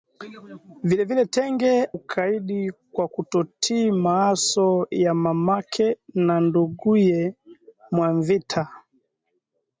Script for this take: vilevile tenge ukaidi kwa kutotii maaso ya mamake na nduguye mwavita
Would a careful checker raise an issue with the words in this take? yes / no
no